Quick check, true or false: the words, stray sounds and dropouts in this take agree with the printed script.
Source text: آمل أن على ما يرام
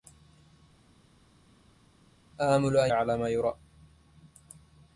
true